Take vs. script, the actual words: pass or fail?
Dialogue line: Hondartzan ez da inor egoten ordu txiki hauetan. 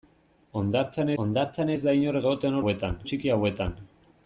fail